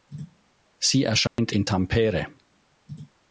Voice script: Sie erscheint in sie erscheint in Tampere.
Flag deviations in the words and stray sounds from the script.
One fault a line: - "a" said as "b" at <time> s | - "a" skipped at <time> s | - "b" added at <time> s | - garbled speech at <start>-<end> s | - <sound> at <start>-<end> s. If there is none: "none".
- dropout at 1.3-1.4 s
- "sie erscheint in" skipped at 1.7 s